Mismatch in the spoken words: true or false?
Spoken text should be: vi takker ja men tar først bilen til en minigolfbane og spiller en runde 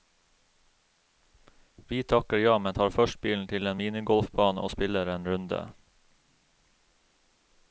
false